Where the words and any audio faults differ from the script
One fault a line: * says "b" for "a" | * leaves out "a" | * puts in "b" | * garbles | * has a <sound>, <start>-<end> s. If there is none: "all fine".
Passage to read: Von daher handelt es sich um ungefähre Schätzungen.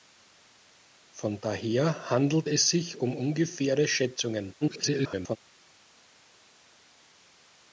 * garbles